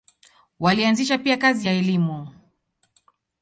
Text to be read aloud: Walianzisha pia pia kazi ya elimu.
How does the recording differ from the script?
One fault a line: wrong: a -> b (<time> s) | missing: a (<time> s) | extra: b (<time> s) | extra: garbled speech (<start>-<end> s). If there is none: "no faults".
missing: pia (1.4 s)